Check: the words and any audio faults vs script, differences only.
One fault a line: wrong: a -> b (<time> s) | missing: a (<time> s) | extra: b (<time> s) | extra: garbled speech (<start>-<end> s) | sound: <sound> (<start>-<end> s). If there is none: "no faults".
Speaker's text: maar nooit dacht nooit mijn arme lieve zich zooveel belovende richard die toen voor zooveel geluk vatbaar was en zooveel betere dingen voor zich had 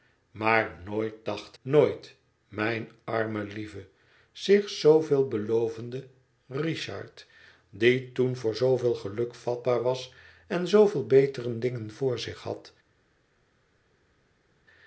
no faults